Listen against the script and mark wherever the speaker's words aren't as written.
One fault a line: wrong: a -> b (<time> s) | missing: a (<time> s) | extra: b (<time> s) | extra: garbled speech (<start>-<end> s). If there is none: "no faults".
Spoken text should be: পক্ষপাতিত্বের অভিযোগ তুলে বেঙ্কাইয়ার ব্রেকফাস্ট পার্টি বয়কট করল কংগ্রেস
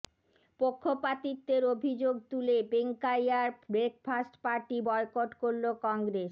no faults